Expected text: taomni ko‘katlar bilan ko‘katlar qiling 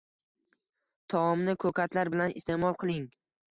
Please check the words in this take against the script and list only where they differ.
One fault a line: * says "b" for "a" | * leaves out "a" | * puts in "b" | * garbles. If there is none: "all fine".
* says "iste'mol" for "ko‘katlar"